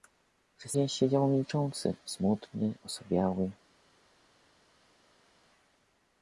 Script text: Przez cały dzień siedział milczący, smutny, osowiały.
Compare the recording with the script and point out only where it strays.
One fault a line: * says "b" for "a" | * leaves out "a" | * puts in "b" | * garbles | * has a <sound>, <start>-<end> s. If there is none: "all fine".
* leaves out "cały"